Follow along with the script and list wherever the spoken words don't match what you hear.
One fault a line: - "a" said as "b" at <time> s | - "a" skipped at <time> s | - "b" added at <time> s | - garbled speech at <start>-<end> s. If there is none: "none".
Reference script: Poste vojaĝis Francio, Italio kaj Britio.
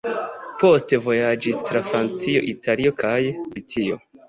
- "tra" added at 1.7 s